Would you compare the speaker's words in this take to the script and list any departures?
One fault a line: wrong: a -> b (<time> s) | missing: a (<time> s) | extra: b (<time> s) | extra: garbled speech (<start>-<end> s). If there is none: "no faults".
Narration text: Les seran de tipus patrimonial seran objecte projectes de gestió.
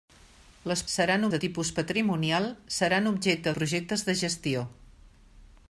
no faults